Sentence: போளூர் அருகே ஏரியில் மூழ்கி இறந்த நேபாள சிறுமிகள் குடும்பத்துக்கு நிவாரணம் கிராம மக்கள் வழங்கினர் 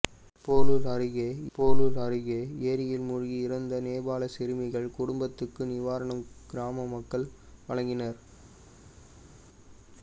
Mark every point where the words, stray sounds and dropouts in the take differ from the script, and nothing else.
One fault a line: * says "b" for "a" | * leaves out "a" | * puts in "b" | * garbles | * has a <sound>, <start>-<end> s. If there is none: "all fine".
* puts in "போளூர் அருகே"